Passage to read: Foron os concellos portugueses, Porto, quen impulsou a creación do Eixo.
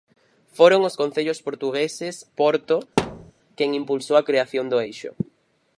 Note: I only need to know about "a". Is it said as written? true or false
true